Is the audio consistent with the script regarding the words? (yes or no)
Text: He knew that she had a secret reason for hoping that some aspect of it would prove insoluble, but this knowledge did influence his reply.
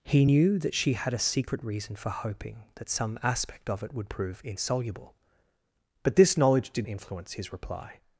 yes